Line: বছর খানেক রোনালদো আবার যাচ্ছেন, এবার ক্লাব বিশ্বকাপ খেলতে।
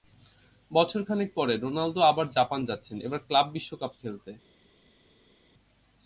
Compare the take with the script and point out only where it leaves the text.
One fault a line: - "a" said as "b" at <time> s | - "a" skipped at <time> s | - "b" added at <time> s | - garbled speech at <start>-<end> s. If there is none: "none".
- "পরে" added at 1.4 s
- "জাপান" added at 2.3 s